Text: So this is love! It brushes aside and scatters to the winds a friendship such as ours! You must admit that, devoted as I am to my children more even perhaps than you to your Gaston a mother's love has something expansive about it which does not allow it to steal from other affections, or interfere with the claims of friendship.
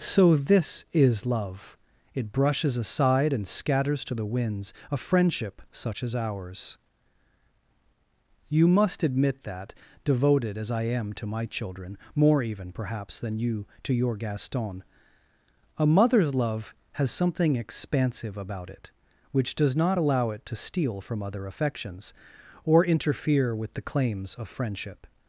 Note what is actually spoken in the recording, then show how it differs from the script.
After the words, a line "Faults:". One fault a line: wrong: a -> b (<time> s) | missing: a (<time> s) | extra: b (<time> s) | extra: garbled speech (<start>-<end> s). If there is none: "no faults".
So this is love! It brushes aside and scatters to the winds a friendship such as ours! You must admit that, devoted as I am to my children more even perhaps than you to your Gaston a mother's love has something expansive about it which does not allow it to steal from other affections, or interfere with the claims of friendship.
Faults:
no faults